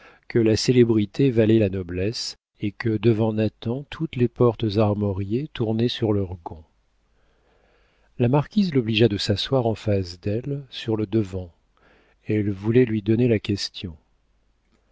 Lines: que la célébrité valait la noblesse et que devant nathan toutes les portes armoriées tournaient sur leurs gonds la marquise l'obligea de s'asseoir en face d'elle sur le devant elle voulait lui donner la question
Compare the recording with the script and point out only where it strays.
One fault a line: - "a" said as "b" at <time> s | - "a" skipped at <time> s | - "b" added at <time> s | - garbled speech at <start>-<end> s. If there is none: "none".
none